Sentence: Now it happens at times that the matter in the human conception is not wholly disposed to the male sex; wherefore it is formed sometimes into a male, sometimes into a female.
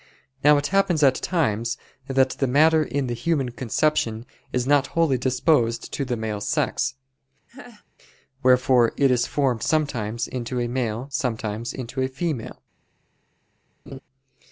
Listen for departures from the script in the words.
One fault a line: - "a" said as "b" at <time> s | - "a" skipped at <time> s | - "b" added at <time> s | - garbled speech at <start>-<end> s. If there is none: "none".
none